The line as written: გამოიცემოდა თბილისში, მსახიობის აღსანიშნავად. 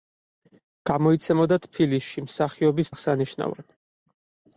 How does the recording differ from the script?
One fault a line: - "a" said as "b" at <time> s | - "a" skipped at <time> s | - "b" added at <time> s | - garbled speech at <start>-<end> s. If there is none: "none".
none